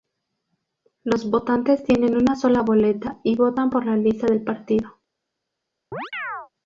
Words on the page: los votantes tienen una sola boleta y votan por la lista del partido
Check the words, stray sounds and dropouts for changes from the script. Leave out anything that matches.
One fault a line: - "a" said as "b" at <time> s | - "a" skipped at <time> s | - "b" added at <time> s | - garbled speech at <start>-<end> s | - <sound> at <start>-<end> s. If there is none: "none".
- chirp at 5.9-6.5 s